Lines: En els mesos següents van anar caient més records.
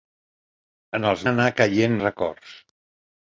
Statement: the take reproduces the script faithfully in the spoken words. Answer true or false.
false